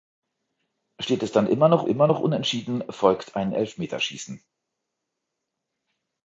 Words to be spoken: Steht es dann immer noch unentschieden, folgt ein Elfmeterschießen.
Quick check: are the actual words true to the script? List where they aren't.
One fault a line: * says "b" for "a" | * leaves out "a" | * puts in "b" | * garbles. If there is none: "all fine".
* puts in "immer noch"